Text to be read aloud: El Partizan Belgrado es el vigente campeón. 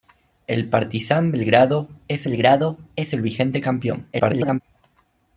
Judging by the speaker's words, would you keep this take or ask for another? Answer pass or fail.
fail